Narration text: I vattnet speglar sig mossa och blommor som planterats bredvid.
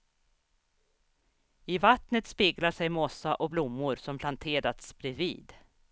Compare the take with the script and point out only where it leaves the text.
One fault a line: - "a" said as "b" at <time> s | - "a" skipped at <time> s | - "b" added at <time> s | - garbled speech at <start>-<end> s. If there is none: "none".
none